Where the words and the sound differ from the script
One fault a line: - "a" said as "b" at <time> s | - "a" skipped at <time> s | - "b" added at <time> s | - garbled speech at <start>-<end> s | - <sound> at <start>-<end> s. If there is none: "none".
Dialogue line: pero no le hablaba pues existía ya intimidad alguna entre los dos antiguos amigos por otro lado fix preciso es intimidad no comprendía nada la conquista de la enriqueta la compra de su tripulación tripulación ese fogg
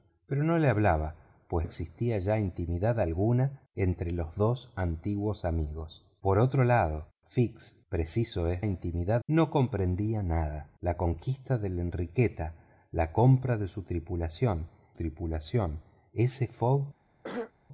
- throat clearing at 17.2-17.5 s